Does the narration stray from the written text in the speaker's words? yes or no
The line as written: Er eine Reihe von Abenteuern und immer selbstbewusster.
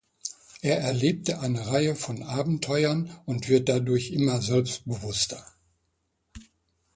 yes